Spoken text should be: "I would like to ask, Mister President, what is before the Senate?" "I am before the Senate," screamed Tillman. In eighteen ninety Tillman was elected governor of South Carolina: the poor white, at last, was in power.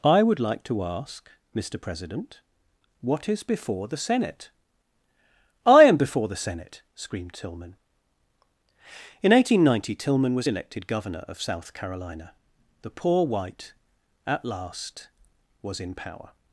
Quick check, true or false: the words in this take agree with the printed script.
true